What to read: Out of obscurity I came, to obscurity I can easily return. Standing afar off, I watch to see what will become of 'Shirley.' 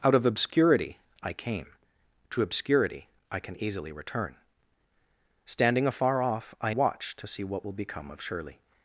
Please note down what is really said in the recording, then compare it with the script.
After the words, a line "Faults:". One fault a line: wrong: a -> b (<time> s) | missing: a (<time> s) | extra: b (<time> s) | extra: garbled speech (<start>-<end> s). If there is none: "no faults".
Out of obscurity I came, to obscurity I can easily return. Standing afar off, I watch to see what will become of 'Shirley.'
Faults:
no faults